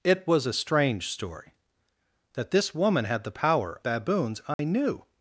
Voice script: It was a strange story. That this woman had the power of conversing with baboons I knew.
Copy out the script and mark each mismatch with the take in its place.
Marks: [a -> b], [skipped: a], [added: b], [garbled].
It was a strange story. That this woman had the power [skipped: of conversing with] baboons I knew.